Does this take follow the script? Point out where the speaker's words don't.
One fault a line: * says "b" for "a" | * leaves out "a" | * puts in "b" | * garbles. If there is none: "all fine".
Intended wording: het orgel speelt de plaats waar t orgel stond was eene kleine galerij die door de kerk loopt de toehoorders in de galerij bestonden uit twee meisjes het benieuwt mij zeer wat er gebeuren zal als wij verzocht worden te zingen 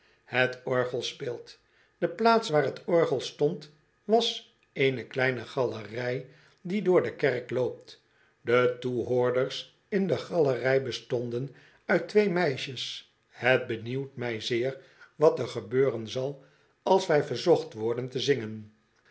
all fine